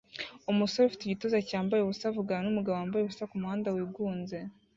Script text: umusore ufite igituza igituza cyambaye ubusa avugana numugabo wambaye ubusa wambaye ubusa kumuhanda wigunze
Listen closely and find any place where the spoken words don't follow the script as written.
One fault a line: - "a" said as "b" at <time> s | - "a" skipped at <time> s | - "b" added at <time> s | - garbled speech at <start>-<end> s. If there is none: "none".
- "igituza" skipped at 1.4 s
- "wambaye ubusa" skipped at 3.3 s